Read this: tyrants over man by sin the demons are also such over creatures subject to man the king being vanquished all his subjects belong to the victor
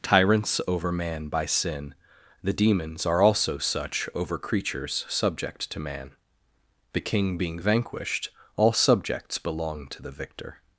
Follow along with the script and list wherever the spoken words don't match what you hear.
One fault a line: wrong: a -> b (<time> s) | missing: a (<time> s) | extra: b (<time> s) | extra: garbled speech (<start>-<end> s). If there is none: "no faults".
missing: his (8.7 s)